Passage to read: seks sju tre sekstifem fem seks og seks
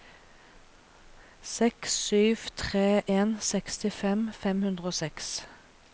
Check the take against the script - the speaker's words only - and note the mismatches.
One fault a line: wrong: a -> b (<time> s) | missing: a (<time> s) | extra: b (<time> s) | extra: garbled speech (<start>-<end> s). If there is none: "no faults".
extra: en (3.2 s)
wrong: seks -> hundre (4.7 s)